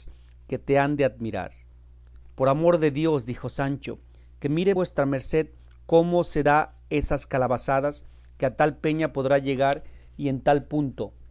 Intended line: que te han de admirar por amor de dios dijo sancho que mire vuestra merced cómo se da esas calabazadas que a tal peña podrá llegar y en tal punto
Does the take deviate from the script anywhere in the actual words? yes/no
no